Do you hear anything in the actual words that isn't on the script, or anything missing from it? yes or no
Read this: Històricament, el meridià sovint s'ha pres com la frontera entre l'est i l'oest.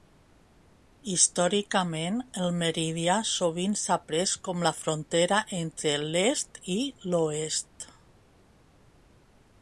no